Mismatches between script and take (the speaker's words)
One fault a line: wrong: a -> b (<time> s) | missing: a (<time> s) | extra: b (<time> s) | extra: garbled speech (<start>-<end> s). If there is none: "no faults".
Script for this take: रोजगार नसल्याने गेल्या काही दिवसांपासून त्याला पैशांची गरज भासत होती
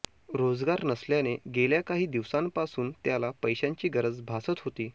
no faults